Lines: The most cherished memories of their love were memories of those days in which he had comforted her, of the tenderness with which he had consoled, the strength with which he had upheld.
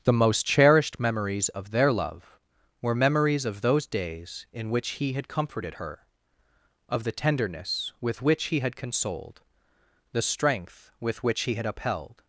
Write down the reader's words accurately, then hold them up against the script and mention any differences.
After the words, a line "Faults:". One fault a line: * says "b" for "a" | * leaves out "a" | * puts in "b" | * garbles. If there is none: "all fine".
The most cherished memories of their love were memories of those days in which he had comforted her, of the tenderness with which he had consoled, the strength with which he had upheld.
Faults:
all fine